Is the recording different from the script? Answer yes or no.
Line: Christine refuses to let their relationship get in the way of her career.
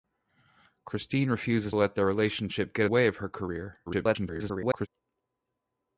yes